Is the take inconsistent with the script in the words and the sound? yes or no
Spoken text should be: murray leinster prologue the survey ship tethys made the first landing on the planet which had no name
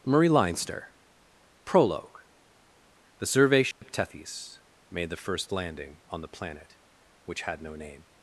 yes